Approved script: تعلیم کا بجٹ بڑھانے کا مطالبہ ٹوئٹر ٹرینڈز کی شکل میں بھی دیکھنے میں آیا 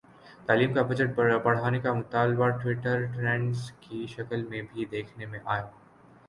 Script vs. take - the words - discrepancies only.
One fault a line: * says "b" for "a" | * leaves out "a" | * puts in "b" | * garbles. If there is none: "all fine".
all fine